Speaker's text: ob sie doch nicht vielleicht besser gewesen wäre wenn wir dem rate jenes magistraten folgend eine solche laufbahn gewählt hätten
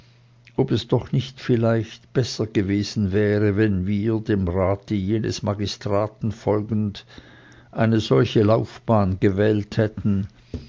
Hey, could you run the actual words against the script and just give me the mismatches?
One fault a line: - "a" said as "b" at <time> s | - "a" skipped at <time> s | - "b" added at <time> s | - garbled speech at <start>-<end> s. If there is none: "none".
- "sie" said as "es" at 0.7 s